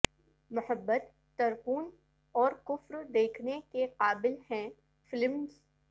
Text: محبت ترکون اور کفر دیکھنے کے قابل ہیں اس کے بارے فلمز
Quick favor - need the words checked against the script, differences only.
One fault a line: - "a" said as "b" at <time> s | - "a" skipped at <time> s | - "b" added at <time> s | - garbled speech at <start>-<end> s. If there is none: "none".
- "اس کے بارے" skipped at 4.7 s